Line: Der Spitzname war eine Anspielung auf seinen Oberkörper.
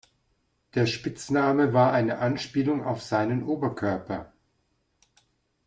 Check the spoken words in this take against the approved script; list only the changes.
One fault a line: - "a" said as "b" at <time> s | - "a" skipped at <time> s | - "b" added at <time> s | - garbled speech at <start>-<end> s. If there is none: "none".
none